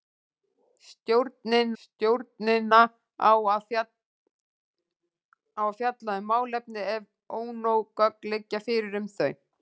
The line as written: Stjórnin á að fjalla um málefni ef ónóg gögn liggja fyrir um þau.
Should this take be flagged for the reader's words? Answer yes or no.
yes